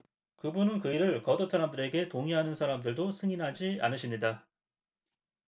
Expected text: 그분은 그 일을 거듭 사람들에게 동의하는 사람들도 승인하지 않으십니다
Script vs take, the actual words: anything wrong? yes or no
no